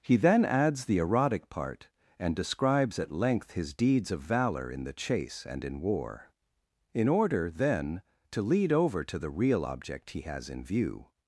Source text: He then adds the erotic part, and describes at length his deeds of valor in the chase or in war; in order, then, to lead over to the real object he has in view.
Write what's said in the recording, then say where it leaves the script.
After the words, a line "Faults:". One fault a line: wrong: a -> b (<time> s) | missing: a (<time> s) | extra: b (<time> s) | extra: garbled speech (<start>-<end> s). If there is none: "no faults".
He then adds the erotic part, and describes at length his deeds of valor in the chase and in war; in order, then, to lead over to the real object he has in view.
Faults:
wrong: or -> and (5.5 s)